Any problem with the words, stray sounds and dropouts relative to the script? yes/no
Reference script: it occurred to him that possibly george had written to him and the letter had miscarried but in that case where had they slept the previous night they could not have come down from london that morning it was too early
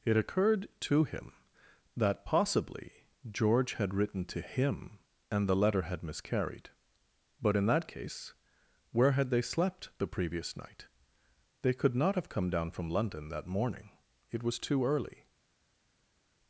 no